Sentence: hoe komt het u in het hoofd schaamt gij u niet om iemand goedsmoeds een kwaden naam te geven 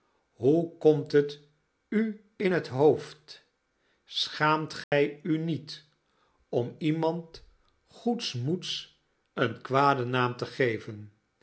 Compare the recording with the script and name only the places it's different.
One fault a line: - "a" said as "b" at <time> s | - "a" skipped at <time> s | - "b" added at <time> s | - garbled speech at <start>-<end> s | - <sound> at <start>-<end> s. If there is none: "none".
- dropout at 4.8-4.9 s